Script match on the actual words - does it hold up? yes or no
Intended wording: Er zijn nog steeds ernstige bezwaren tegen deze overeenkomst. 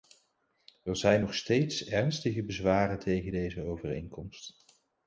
yes